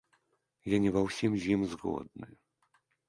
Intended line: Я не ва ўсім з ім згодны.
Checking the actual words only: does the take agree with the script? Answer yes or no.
yes